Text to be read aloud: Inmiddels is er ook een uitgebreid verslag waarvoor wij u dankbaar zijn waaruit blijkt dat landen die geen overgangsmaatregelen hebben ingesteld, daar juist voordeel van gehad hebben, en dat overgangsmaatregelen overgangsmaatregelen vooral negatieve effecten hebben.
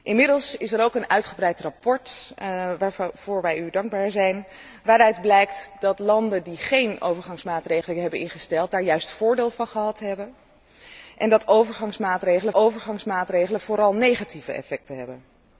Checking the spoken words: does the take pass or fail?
pass